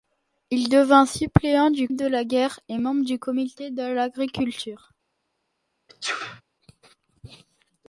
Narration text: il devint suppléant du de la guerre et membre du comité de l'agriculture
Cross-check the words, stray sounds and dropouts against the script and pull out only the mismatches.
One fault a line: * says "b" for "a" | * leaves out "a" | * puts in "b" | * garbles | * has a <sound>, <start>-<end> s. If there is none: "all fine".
* has a sneeze, 5.9-6.4 s